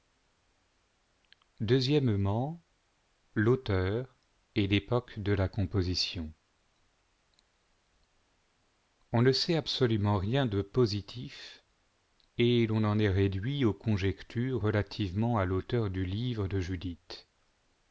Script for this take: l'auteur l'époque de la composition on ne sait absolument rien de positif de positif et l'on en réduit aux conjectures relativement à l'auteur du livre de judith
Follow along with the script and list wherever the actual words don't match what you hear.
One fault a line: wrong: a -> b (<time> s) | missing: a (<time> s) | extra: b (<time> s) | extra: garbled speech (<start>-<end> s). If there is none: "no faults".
extra: et (4.5 s)
missing: de positif (11.6 s)
extra: est (13.0 s)